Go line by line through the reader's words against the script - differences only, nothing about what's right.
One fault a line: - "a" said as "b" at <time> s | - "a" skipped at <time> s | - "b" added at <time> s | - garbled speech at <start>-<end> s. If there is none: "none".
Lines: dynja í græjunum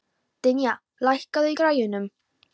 - "lækkaðu" added at 1.1 s